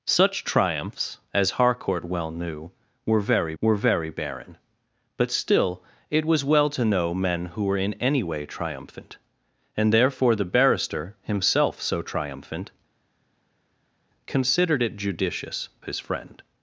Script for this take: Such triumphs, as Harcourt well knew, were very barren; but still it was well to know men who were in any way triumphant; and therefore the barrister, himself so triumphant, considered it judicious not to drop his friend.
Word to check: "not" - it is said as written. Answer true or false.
false